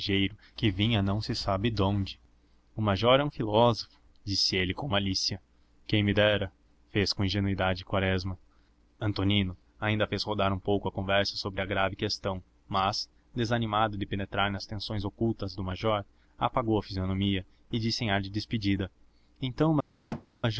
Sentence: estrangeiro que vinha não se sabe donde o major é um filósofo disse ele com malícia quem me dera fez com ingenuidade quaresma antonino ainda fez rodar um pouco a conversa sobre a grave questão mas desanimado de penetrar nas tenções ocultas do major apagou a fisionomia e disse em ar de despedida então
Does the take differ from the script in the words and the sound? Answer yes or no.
yes